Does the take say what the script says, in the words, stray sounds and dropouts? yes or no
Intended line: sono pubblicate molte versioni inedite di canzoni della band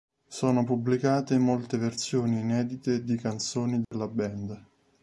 no